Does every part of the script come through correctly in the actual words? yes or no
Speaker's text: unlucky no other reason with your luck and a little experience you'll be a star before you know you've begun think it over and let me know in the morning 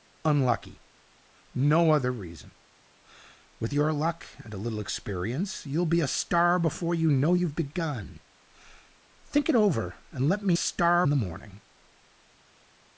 no